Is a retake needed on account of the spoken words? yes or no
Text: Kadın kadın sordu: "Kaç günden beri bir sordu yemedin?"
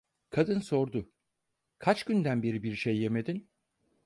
yes